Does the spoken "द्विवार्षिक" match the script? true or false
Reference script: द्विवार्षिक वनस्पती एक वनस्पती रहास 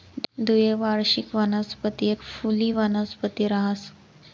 true